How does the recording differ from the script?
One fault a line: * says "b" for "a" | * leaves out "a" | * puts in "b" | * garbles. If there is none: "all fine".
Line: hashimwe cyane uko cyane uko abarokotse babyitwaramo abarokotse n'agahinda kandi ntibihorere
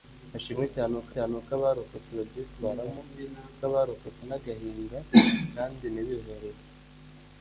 all fine